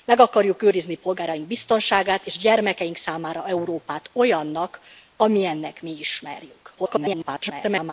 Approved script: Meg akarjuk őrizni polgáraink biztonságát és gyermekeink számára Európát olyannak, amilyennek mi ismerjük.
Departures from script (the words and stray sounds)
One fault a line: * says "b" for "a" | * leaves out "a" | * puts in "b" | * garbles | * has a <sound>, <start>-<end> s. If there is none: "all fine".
* garbles